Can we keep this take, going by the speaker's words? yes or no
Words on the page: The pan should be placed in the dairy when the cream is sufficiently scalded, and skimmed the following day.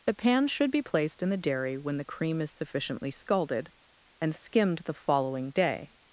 yes